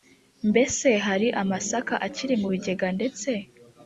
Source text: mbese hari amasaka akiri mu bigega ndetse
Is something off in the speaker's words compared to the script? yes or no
no